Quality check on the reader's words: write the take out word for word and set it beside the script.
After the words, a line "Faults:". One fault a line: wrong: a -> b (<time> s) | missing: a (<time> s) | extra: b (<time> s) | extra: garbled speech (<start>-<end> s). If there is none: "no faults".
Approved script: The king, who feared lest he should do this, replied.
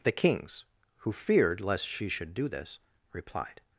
The kings, who feared lest she should do this, replied.
Faults:
wrong: king -> kings (0.1 s)
wrong: he -> she (1.9 s)